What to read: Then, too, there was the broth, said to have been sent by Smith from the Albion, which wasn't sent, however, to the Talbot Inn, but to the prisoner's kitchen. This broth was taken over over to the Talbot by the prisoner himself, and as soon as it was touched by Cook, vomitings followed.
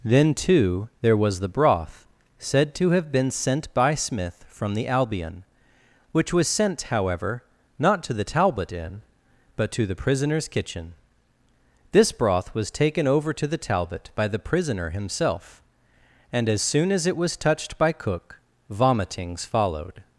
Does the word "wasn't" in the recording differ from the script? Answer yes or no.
yes